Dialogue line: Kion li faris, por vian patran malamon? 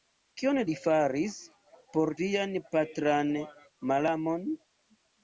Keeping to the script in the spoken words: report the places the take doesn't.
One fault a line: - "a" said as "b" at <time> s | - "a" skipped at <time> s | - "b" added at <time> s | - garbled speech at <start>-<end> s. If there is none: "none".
none